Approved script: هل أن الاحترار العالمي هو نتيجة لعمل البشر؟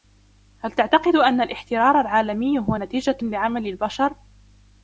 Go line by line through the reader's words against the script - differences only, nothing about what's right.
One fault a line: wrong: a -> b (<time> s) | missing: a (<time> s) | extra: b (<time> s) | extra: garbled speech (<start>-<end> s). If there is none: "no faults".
extra: تعتقد (0.7 s)